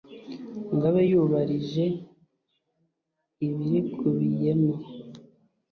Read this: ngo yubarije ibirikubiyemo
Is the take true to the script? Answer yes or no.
no